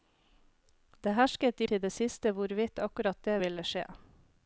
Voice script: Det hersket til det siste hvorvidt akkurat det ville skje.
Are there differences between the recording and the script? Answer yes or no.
no